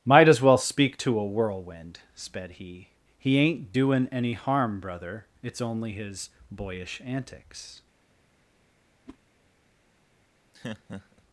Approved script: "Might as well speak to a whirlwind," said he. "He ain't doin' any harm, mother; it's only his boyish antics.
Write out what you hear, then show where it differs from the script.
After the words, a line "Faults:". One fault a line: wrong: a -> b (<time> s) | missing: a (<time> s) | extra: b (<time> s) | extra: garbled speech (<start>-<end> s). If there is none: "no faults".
"Might as well speak to a whirlwind," sped he. "He ain't doin' any harm, brother; it's only his boyish antics.
Faults:
wrong: said -> sped (2.1 s)
wrong: mother -> brother (4.8 s)